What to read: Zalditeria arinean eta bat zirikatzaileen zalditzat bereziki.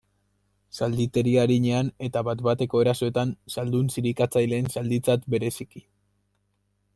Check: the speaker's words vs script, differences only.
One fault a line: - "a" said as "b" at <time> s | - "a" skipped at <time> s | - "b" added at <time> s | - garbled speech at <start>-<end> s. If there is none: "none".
- "bateko erasoetan zaldun" added at 2.5 s